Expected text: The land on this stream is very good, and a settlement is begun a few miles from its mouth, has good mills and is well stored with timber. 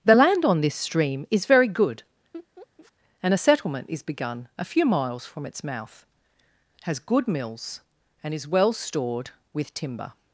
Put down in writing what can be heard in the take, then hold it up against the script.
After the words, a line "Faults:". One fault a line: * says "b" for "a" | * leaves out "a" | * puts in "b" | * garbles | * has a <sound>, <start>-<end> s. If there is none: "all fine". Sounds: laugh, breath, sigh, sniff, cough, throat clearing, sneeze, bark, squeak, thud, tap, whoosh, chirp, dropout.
The land on this stream is very good, and a settlement is begun a few miles from its mouth, has good mills and is well stored with timber.
Faults:
* has a laugh, 2.3-2.9 s